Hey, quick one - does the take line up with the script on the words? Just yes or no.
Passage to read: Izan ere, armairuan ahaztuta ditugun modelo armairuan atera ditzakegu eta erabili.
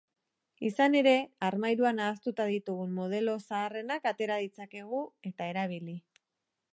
no